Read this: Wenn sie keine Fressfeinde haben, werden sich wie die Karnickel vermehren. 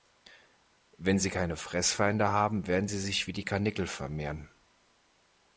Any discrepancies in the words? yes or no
yes